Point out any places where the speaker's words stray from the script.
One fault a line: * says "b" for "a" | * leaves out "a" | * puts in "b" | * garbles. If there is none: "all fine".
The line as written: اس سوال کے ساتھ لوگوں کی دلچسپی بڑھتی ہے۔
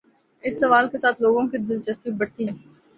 all fine